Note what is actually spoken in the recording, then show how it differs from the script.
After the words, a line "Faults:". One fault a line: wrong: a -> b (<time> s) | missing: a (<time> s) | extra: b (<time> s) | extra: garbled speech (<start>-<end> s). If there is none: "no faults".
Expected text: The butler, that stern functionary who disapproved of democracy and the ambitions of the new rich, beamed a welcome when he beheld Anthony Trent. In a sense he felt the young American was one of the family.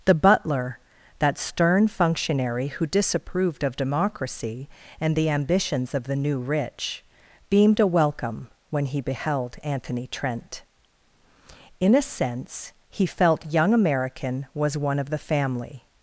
The butler, that stern functionary who disapproved of democracy and the ambitions of the new rich, beamed a welcome when he beheld Anthony Trent. In a sense he felt young American was one of the family.
Faults:
missing: the (13.4 s)